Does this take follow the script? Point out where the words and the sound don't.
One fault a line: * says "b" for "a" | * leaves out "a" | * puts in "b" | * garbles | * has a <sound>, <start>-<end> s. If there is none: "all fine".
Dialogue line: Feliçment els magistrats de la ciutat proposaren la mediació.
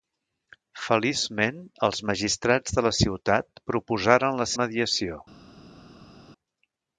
all fine